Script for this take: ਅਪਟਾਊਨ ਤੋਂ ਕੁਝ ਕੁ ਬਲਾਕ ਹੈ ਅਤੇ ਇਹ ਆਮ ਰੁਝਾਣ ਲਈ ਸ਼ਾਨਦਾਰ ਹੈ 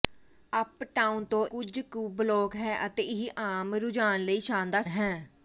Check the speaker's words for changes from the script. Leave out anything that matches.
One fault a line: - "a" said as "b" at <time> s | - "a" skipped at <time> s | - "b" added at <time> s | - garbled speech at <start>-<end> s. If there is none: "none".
none